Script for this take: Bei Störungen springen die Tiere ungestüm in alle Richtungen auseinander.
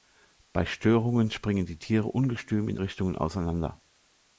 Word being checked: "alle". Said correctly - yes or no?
no